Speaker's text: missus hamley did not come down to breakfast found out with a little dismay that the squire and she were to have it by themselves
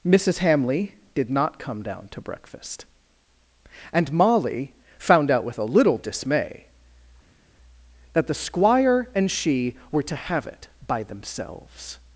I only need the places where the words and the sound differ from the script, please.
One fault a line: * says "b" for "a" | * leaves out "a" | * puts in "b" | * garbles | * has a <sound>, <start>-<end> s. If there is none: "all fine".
* puts in "and molly"